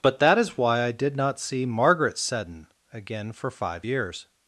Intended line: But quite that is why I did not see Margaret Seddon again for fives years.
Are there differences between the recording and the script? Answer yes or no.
yes